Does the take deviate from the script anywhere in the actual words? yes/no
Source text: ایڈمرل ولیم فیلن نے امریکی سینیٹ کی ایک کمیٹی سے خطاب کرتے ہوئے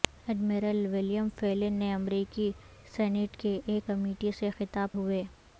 yes